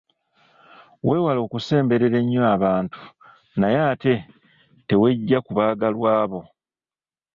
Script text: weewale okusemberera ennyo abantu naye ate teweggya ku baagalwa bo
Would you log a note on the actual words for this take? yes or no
no